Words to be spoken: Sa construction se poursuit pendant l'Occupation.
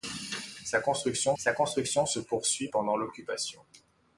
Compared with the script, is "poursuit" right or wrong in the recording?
right